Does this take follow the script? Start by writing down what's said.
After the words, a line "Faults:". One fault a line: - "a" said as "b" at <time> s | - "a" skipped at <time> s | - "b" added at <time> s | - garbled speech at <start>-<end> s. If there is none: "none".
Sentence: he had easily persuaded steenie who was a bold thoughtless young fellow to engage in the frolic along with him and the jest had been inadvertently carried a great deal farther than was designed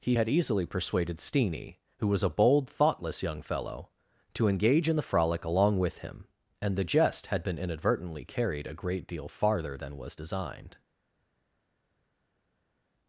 he had easily persuaded steenie who was a bold thoughtless young fellow to engage in the frolic along with him and the jest had been inadvertently carried a great deal farther than was designed
Faults:
none